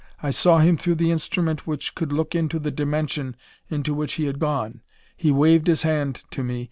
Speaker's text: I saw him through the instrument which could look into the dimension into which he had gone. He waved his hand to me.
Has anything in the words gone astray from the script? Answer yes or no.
no